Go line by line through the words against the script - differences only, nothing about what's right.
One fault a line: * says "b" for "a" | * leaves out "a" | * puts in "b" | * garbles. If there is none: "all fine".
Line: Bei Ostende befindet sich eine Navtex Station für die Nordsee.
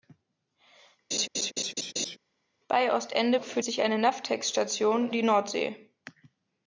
* says "für" for "befindet"
* leaves out "für"